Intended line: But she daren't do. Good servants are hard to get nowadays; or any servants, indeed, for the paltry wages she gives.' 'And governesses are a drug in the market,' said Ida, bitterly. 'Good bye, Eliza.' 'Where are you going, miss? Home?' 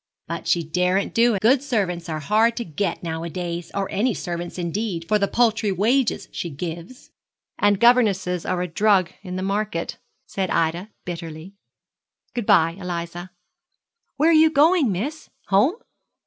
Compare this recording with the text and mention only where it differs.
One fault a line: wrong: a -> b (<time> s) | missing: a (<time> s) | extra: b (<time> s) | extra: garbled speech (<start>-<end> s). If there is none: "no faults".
no faults